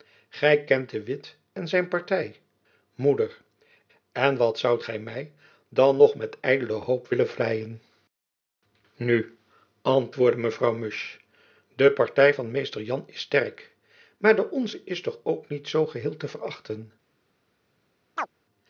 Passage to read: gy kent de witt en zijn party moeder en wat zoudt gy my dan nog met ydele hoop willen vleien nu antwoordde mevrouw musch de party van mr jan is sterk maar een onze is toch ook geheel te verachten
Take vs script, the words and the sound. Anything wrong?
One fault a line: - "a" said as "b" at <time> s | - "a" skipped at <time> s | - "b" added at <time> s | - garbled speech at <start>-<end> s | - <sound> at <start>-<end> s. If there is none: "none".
- "een" said as "de" at 14.4 s
- "niet zoo" added at 15.5 s
- chirp at 18.2-18.3 s